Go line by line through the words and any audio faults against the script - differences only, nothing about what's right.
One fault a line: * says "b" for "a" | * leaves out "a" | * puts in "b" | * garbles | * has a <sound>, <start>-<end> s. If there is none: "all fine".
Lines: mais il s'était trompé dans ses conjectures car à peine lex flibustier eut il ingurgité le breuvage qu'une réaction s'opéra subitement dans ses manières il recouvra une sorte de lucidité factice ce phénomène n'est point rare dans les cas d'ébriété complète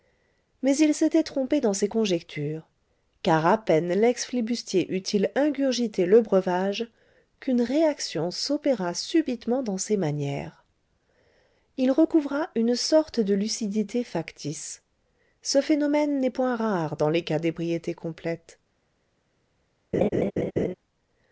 * has a laugh, 19.9-20.7 s